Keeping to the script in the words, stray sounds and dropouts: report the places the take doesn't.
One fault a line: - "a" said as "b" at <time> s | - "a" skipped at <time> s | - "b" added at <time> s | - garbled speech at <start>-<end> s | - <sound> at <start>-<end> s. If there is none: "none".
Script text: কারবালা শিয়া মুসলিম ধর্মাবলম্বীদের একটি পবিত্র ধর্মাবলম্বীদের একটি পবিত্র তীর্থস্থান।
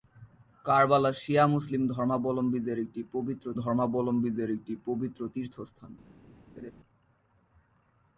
- laugh at 6.6-6.7 s